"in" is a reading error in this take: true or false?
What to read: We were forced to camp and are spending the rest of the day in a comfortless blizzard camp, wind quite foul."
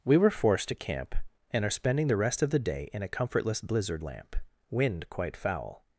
false